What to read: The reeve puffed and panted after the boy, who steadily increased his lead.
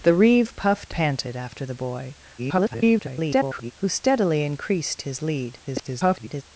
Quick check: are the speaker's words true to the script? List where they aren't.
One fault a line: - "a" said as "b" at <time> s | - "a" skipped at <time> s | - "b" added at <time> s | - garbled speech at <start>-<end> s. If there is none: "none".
- "and" skipped at 0.9 s
- garbled speech at 2.4-3.7 s
- garbled speech at 5.6-6.4 s